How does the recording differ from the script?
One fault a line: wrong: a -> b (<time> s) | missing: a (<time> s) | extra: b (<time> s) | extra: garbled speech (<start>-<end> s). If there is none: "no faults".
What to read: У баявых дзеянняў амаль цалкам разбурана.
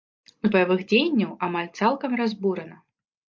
no faults